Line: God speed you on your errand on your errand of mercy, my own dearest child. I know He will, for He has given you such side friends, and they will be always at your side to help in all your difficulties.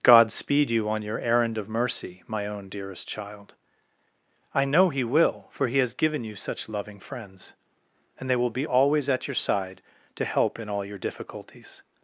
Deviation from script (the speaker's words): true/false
true